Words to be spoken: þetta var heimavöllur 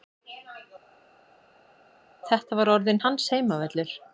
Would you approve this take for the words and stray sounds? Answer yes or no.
no